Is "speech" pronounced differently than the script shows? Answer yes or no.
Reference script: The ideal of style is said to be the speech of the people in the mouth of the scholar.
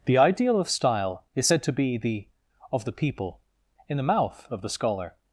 yes